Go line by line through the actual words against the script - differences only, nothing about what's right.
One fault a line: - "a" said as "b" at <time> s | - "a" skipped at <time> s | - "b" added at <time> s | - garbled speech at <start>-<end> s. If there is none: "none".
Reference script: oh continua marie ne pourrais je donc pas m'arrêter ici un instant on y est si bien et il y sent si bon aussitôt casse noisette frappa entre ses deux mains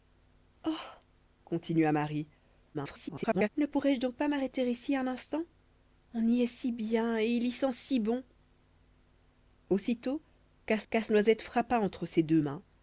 - garbled speech at 2.7-3.5 s
- "casse" added at 10.9 s